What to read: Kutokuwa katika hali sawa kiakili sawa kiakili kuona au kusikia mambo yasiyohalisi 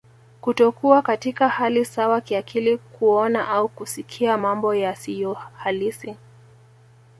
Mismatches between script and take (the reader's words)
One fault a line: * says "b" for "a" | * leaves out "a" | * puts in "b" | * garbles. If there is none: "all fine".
* leaves out "sawa kiakili"